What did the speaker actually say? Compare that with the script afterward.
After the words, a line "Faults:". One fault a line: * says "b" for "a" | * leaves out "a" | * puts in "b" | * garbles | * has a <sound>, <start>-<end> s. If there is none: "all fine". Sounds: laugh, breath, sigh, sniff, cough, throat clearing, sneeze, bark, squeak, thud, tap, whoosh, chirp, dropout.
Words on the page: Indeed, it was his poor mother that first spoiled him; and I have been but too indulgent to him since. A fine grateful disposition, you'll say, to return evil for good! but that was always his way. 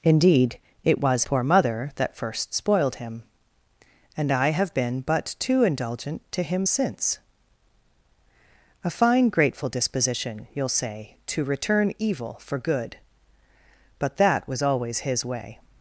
Indeed, it was poor mother that first spoiled him; and I have been but too indulgent to him since. A fine grateful disposition, you'll say, to return evil for good! but that was always his way.
Faults:
* leaves out "his"